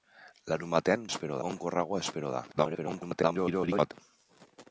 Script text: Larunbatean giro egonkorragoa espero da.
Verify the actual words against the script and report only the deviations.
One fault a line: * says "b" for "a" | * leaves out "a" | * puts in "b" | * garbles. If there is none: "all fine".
* says "espero" for "giro"
* garbles